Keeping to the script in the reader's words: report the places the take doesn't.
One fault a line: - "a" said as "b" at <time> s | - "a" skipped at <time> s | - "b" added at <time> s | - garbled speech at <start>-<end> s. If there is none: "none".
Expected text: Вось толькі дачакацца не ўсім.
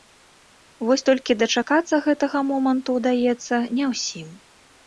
- "гэтага моманту ўдаецца" added at 2.1 s